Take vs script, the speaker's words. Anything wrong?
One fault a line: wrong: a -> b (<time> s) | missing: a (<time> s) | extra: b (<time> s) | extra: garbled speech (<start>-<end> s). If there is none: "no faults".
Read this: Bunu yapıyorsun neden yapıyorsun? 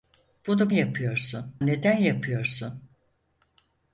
no faults